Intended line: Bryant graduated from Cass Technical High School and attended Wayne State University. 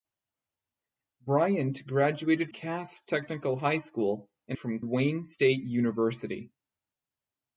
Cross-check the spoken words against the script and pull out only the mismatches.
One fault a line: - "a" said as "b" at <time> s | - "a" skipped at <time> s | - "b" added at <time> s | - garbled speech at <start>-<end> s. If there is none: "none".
- "from" skipped at 2.5 s
- "attended" said as "from" at 4.5 s